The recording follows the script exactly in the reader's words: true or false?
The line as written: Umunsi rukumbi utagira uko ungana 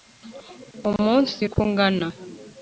false